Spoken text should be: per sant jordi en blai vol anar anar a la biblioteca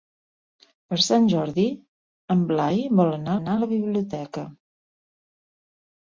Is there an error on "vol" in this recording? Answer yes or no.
no